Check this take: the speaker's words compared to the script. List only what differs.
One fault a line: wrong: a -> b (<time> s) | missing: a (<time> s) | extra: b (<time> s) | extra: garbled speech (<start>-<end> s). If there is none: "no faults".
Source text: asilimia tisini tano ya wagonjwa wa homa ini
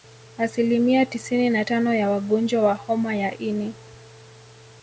extra: na (1.5 s)
extra: ya (3.1 s)